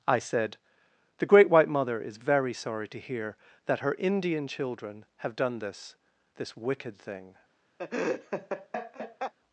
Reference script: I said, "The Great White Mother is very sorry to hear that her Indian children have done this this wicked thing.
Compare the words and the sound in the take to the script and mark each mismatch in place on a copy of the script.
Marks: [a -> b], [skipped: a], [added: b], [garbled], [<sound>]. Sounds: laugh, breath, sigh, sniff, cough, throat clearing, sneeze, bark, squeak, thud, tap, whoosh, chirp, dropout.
I said, "The Great White Mother is very sorry to hear that her Indian children have done this this wicked thing. [laugh]